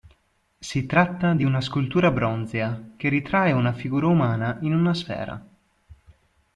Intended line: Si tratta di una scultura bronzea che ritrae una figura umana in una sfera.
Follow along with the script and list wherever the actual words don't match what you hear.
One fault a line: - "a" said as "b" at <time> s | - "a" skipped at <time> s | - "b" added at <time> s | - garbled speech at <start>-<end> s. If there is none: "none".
none